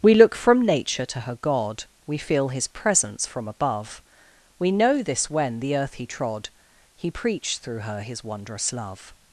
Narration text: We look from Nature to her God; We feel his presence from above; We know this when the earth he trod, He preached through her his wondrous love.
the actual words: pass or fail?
pass